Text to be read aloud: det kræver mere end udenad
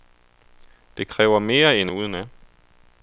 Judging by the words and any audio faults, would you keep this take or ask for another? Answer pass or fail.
pass